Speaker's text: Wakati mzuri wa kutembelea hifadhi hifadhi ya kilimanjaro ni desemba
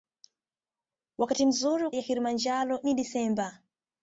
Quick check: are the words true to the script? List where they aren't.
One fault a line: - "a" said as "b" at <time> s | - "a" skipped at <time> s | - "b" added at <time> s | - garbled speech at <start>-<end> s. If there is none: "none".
- "kutembelea hifadhi hifadhi" skipped at 1.9 s